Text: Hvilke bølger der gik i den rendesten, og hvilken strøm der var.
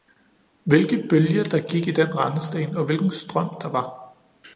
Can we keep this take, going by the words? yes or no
yes